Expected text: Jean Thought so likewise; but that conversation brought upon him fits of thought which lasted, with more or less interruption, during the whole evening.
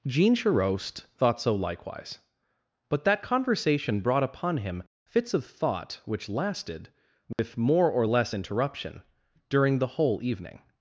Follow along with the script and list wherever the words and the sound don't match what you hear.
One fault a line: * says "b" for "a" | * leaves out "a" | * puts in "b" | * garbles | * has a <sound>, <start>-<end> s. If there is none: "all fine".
* puts in "Charost"
* has a dropout, 7.3-7.4 s